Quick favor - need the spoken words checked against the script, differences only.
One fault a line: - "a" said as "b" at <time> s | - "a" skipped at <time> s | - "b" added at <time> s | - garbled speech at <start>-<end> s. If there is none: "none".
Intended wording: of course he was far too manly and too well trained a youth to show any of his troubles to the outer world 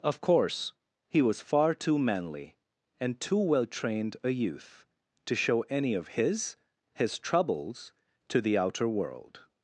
- "his" added at 7.0 s